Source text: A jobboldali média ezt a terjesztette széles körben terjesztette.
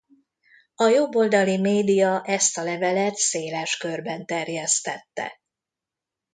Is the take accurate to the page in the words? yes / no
no